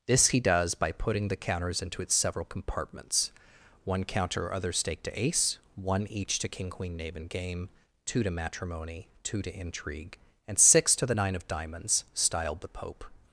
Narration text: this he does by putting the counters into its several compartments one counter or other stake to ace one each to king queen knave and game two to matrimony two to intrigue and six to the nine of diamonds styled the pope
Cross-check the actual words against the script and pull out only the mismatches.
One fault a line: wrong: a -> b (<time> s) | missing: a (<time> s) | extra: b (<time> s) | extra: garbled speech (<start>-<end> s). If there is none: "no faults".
no faults